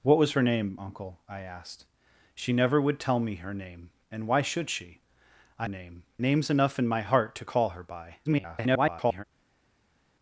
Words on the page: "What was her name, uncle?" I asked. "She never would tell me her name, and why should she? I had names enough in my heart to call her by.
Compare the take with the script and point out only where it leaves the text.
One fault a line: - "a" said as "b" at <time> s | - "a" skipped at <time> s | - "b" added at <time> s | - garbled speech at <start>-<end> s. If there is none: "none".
- "had" said as "name" at 5.7 s
- garbled speech at 8.2-9.2 s